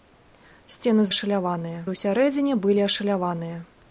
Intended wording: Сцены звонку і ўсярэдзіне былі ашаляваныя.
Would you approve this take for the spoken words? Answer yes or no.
no